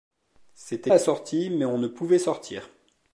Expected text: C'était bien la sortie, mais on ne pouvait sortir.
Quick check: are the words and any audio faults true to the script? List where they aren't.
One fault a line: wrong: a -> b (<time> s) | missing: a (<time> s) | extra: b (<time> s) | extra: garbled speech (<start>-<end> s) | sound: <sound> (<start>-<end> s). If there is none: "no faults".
missing: bien (0.9 s)